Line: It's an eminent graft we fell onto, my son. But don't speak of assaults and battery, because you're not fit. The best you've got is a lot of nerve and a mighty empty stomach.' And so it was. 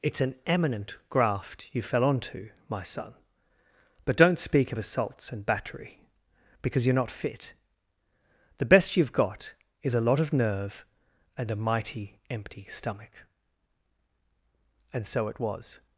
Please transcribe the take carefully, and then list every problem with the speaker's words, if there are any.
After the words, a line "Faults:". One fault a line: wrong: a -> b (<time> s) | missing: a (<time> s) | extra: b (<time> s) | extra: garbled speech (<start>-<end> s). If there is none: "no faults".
It's an eminent graft you fell onto, my son. But don't speak of assaults and battery, because you're not fit. The best you've got is a lot of nerve and a mighty empty stomach.' And so it was.
Faults:
wrong: we -> you (1.7 s)